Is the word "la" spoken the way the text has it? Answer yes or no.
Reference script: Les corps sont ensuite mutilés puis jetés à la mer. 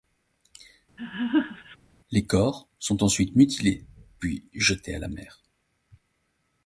yes